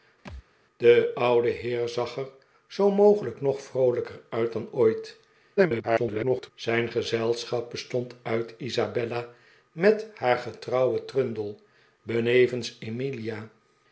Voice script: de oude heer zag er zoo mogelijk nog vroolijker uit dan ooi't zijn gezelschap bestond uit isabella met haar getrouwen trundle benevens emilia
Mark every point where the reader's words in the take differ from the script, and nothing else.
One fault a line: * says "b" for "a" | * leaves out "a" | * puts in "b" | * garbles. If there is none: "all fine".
* garbles